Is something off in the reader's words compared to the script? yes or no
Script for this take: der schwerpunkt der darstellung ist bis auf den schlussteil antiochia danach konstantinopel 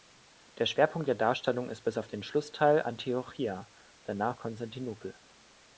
no